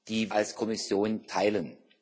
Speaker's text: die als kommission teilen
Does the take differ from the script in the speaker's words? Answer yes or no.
no